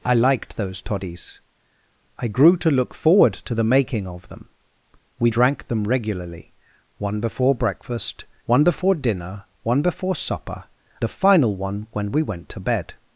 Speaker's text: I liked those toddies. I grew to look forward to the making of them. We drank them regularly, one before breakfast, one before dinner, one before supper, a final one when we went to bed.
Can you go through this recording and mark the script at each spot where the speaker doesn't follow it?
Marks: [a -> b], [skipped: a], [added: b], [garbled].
I liked those toddies. I grew to look forward to the making of them. We drank them regularly, one before breakfast, one before dinner, one before supper, a final one when we went to bed.